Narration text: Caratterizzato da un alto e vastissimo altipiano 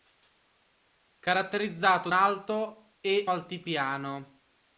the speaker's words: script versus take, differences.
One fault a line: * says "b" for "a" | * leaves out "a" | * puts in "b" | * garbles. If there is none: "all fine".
* leaves out "da un"
* leaves out "vastissimo"